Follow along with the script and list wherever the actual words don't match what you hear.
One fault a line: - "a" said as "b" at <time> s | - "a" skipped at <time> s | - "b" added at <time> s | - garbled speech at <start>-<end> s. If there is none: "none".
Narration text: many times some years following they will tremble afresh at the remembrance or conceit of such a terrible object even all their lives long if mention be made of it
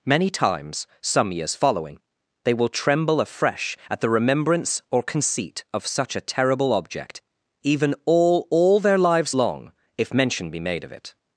- "all" added at 8.5 s